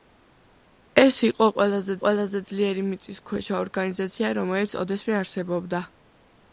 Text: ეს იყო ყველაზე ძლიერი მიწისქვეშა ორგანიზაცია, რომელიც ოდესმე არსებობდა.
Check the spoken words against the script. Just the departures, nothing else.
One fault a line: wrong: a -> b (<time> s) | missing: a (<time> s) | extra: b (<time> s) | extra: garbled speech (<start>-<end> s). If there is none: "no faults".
extra: ყველაზე (2.0 s)